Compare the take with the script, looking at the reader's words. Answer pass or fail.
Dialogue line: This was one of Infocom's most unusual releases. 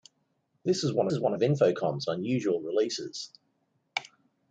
fail